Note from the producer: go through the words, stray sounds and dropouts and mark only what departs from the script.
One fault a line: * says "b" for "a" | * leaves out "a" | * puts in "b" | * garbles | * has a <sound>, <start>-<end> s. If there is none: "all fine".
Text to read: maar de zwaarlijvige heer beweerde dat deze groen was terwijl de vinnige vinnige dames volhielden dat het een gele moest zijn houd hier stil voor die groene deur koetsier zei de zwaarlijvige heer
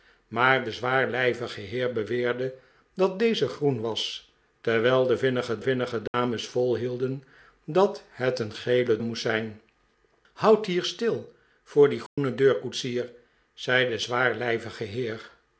* has a dropout, 6.1-6.1 s
* has a dropout, 12.1-12.2 s